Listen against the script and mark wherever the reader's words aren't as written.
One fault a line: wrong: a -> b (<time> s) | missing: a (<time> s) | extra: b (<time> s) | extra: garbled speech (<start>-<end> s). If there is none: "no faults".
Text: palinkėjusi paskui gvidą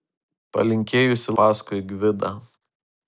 no faults